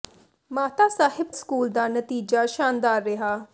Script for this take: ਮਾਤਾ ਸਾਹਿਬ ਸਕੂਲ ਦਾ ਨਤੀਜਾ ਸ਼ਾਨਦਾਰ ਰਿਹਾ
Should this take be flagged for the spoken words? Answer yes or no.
no